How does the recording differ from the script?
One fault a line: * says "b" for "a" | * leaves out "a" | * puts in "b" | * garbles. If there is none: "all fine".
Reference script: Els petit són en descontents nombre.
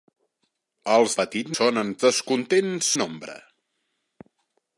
all fine